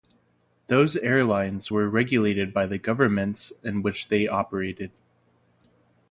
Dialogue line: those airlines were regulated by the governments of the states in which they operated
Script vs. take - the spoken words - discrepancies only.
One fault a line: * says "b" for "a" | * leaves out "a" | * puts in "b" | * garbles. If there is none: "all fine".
* leaves out "of the states"